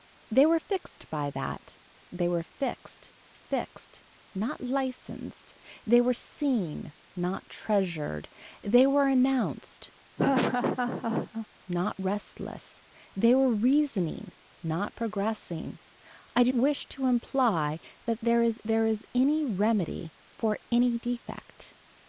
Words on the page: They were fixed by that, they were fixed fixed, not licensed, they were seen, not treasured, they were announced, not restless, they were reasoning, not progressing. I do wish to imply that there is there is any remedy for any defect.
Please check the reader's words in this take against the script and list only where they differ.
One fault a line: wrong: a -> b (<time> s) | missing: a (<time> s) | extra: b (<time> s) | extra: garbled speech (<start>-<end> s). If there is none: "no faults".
no faults